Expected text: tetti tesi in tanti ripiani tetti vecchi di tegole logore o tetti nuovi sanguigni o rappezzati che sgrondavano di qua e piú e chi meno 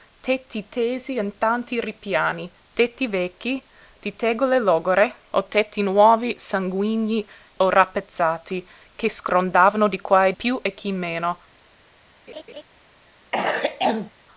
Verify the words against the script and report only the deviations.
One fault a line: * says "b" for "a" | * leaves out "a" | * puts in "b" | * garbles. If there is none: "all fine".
all fine